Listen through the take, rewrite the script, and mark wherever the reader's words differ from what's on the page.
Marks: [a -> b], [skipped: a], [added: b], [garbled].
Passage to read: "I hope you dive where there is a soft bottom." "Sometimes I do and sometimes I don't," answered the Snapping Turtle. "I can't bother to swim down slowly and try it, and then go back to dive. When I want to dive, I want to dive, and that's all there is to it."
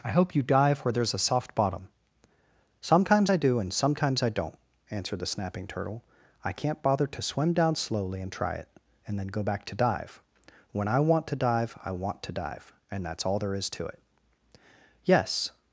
"I hope you dive where there is a soft bottom." "Sometimes I do and sometimes I don't," answered the Snapping Turtle. "I can't bother to swim down slowly and try it, and then go back to dive. When I want to dive, I want to dive, and that's all there is to it." [added: Yes]